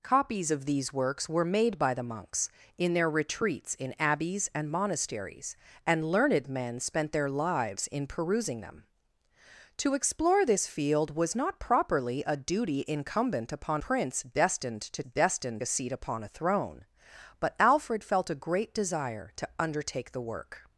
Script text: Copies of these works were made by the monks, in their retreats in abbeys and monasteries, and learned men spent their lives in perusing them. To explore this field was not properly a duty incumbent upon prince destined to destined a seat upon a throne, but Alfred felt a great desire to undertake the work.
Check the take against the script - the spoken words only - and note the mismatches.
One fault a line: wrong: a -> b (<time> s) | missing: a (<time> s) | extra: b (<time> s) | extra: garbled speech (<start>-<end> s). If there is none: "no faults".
no faults